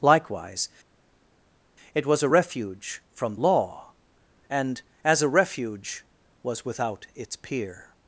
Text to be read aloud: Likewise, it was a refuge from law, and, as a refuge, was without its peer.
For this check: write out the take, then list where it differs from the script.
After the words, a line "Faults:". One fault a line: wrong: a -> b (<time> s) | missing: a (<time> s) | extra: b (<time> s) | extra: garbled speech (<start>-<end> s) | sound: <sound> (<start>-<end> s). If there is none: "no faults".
Likewise, it was a refuge from law, and, as a refuge, was without its peer.
Faults:
no faults